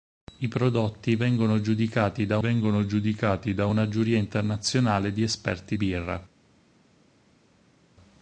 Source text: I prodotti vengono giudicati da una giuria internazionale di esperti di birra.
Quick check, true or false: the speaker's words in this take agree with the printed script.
false